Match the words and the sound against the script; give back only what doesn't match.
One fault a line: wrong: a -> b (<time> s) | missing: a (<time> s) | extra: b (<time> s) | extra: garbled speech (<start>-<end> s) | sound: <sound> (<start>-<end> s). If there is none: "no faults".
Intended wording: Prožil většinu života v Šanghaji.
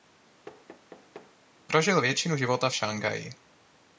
sound: thud (0.5-1.4 s)